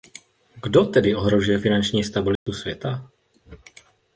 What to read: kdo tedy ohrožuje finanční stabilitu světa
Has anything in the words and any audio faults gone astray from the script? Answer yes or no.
yes